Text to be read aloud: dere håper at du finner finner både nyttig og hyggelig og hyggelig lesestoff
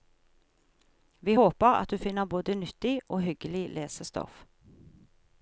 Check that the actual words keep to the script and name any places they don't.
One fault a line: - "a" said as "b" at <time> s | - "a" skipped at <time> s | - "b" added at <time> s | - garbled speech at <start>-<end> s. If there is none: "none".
- "dere" said as "vi" at 1.2 s
- "finner" skipped at 2.2 s
- "og hyggelig" skipped at 3.7 s